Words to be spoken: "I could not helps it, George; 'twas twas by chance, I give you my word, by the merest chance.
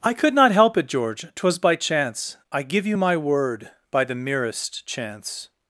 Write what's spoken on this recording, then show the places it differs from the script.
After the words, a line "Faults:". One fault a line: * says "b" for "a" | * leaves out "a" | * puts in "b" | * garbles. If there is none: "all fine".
"I could not help it, George; 'twas by chance, I give you my word, by the merest chance.
Faults:
* says "help" for "helps"
* leaves out "twas"